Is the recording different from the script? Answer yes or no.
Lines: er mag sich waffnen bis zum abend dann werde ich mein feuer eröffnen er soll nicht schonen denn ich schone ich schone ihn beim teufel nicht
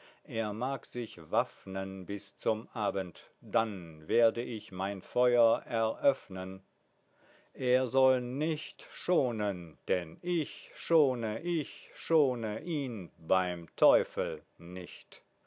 no